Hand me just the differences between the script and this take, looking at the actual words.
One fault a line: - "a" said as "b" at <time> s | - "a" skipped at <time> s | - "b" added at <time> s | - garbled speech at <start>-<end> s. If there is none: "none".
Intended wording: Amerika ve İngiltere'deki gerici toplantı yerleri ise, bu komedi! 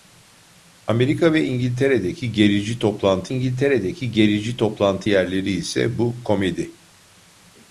- "İngiltere'deki gerici toplantı" added at 3.3 s